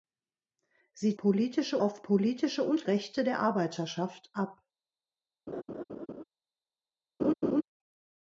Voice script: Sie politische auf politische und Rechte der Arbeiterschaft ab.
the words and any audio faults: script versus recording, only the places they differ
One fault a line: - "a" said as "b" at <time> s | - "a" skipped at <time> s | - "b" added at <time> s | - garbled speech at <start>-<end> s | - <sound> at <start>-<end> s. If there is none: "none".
- laugh at 5.5-6.2 s
- laugh at 7.2-7.6 s